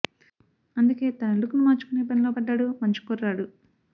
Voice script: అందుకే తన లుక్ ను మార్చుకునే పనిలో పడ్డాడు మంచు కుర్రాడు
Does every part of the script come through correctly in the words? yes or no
yes